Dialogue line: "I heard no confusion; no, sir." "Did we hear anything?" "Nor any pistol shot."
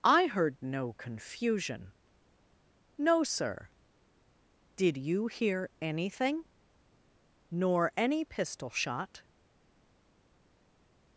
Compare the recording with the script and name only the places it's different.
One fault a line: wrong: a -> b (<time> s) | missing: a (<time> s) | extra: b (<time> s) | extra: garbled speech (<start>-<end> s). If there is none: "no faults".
wrong: we -> you (5.0 s)